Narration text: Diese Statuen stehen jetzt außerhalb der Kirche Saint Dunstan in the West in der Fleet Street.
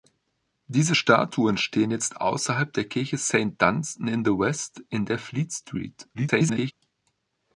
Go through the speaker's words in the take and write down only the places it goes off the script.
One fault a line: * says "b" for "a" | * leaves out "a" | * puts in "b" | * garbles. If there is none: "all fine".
* garbles